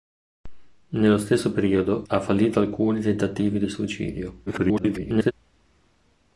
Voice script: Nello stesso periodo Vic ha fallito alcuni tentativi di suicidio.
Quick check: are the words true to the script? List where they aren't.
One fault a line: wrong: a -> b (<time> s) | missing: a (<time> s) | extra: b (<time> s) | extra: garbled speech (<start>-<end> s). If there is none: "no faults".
missing: Vic (2.0 s)
extra: garbled speech (4.5-5.3 s)